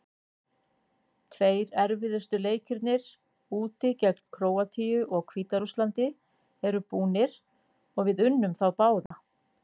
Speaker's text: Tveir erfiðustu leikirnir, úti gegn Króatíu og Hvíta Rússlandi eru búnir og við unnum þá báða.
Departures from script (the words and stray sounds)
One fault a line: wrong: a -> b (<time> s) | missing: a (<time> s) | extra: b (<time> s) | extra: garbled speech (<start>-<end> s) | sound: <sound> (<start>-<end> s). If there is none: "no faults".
sound: dropout (9.1-9.1 s)